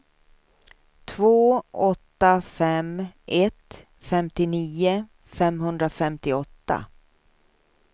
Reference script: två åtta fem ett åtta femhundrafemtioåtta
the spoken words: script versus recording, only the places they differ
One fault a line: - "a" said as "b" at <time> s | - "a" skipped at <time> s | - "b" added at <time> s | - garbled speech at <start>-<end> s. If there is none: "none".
- "åtta" said as "femtionio" at 4.0 s